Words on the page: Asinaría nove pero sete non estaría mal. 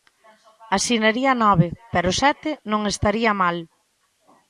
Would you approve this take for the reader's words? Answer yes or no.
yes